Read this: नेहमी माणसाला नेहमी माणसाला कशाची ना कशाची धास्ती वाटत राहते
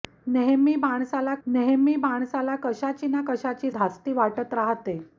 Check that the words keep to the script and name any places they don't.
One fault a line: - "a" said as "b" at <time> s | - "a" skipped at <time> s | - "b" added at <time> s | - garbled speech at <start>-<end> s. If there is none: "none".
none